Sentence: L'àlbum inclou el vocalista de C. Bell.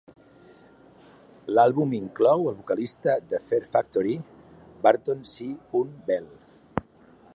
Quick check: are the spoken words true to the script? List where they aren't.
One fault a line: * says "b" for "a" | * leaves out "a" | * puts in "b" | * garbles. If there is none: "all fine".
* puts in "Fear Factory Burton"